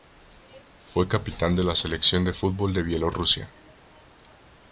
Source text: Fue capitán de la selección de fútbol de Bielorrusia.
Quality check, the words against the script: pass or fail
pass